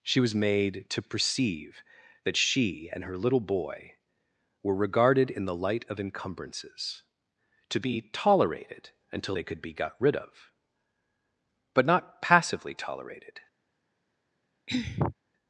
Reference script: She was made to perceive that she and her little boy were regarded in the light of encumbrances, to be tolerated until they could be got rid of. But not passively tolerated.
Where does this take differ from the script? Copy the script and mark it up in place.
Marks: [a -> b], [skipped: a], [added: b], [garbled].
She was made to perceive that she and her little boy were regarded in the light of encumbrances, to be tolerated until they could be got rid of. But not passively tolerated.